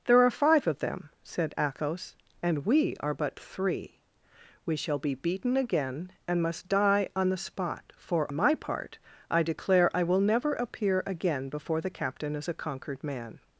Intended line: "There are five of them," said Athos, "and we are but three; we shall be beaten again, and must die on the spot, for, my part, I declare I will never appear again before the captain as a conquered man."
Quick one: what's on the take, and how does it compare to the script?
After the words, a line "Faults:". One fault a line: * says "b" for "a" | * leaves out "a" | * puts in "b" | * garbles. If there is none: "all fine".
"There are five of them," said Athos, "and we are but three; we shall be beaten again, and must die on the spot, for, my part, I declare I will never appear again before the captain as a conquered man."
Faults:
all fine